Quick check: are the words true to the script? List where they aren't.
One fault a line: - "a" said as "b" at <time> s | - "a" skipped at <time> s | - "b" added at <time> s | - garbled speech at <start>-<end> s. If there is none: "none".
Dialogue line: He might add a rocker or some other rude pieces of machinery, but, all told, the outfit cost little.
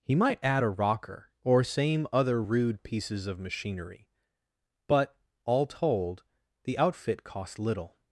- "some" said as "same" at 1.6 s